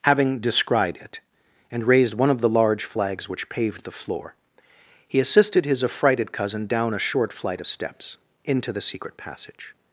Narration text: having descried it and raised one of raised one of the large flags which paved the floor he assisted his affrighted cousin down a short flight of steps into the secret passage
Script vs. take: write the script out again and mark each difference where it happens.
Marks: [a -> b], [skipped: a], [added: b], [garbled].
having descried it and raised one of [skipped: raised one of] the large flags which paved the floor he assisted his affrighted cousin down a short flight of steps into the secret passage